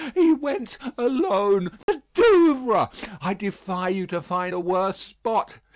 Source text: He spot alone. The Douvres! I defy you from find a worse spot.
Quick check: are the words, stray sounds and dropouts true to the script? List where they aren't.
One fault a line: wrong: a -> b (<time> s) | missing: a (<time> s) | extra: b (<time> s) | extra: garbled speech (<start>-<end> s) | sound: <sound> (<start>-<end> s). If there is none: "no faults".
wrong: spot -> went (0.3 s)
sound: dropout (1.8-1.9 s)
wrong: from -> to (4.1 s)